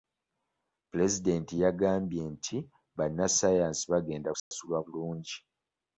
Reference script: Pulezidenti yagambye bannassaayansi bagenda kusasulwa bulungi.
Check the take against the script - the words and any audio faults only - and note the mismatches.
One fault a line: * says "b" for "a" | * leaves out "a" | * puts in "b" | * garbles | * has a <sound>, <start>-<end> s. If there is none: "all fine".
* puts in "nti"
* has a dropout, 4.4-4.5 s